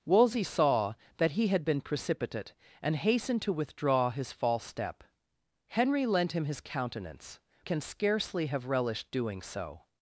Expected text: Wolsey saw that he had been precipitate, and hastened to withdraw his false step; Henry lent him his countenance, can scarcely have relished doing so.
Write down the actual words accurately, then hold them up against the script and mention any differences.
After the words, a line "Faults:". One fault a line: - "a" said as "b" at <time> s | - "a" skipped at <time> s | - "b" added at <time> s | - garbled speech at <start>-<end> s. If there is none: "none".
Wolsey saw that he had been precipitate, and hastened to withdraw his false step; Henry lent him his countenance, can scarcely have relished doing so.
Faults:
none